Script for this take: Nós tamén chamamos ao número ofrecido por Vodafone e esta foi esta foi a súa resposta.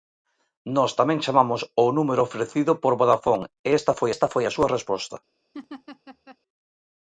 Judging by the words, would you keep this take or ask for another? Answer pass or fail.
pass